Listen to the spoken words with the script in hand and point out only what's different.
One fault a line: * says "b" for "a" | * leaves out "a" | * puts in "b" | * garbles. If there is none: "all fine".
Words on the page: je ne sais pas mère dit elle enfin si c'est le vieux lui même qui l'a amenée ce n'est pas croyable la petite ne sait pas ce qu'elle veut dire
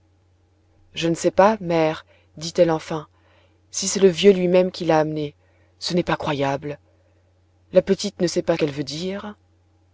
* leaves out "ce"